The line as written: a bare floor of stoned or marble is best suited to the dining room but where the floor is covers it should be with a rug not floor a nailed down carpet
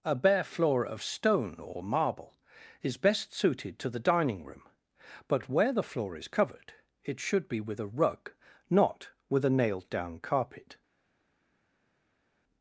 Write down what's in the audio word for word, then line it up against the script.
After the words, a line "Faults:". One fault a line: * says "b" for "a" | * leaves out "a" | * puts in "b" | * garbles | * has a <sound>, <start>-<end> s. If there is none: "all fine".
a bare floor of stone or marble is best suited to the dining room but where the floor is covered it should be with a rug not with a nailed down carpet
Faults:
* says "stone" for "stoned"
* says "covered" for "covers"
* says "with" for "floor"